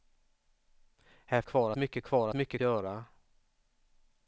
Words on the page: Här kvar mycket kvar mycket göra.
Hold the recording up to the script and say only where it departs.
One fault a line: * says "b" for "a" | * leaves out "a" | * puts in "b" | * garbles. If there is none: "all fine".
all fine